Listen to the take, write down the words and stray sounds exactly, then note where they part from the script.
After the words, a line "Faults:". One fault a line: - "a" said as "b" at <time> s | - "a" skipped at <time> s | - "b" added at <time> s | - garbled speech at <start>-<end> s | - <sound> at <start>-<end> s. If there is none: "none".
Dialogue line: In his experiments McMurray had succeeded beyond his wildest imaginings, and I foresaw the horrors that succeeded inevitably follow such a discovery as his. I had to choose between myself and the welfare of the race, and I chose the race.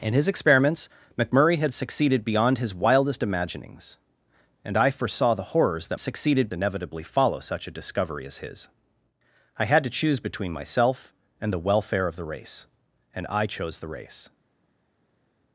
In his experiments McMurray had succeeded beyond his wildest imaginings, and I foresaw the horrors that succeeded inevitably follow such a discovery as his. I had to choose between myself and the welfare of the race, and I chose the race.
Faults:
none